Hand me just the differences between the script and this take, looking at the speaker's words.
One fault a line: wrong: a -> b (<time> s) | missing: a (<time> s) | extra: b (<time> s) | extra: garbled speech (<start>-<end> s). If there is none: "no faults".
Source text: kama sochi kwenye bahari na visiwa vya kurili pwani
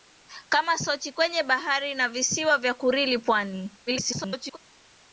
extra: garbled speech (3.9-4.6 s)